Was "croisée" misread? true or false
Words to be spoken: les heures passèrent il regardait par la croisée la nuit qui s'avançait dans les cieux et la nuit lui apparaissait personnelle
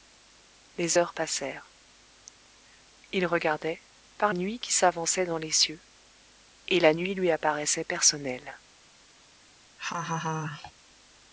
true